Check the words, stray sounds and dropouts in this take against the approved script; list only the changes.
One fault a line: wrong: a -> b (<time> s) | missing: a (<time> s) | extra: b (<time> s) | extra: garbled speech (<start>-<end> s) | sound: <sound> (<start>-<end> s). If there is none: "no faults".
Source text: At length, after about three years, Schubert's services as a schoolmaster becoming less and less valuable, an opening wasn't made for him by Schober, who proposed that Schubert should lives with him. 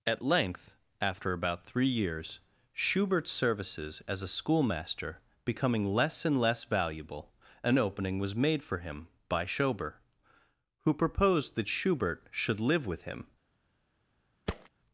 wrong: wasn't -> was (8.2 s)
wrong: lives -> live (12.6 s)
sound: thud (14.5-14.7 s)